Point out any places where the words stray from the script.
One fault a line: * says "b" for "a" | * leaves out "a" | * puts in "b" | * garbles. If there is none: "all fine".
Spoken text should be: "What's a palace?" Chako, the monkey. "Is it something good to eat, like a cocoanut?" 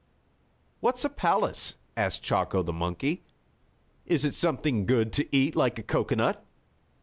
* puts in "asked"